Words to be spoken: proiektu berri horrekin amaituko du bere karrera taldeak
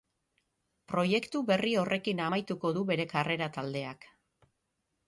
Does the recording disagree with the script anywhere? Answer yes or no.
no